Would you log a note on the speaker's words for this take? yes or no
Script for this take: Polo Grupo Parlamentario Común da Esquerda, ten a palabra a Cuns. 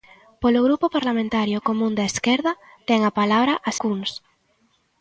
no